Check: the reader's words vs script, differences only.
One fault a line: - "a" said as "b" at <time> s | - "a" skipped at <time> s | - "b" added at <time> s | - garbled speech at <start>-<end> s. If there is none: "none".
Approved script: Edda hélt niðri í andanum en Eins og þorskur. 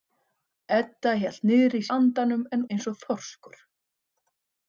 none